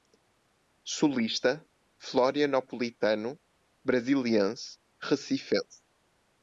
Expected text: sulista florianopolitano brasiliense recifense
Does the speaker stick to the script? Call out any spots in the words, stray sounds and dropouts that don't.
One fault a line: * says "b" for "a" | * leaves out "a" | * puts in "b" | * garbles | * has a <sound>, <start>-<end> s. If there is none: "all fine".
all fine